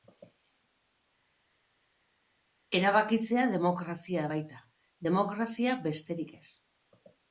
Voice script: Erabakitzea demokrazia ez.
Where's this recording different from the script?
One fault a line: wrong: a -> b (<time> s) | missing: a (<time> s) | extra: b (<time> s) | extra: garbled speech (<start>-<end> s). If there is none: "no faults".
extra: baita demokrazia besterik (4.4 s)